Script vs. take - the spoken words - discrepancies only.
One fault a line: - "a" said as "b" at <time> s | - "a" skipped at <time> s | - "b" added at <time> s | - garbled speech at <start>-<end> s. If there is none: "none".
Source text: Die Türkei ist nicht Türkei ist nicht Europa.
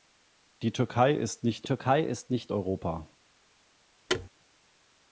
none